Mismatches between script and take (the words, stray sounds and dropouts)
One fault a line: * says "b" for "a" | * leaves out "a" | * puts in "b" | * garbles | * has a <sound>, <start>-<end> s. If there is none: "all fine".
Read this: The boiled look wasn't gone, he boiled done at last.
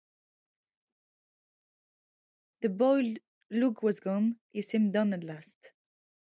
* says "was" for "wasn't"
* says "seemed" for "boiled"